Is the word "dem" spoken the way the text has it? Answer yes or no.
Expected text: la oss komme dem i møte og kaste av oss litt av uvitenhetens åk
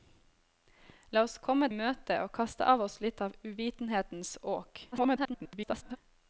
no